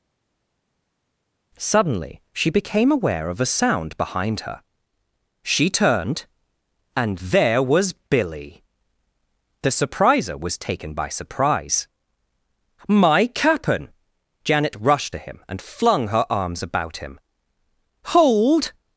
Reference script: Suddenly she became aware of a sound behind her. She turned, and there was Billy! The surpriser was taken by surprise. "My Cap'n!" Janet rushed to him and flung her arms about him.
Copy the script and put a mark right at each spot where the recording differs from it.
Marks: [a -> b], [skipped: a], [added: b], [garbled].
Suddenly she became aware of a sound behind her. She turned, and there was Billy! The surpriser was taken by surprise. "My Cap'n!" Janet rushed to him and flung her arms about him. [added: Hold]